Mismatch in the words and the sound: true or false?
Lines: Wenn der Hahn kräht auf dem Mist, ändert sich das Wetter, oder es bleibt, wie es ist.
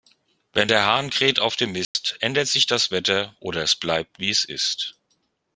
true